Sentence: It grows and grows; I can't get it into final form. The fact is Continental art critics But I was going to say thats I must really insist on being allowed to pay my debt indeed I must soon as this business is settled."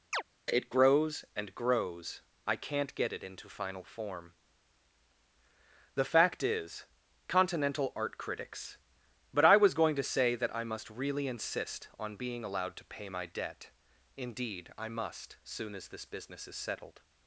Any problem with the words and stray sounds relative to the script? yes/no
yes